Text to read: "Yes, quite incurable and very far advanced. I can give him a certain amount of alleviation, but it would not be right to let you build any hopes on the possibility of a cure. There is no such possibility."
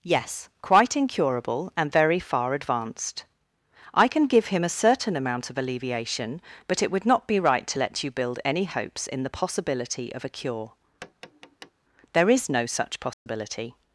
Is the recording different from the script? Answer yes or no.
yes